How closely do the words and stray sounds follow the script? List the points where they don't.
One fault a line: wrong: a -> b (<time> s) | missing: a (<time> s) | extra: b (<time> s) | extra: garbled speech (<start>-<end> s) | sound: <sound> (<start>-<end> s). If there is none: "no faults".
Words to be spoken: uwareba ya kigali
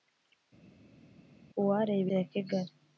no faults